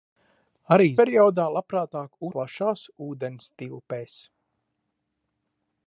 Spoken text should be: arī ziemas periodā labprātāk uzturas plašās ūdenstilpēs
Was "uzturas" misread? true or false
true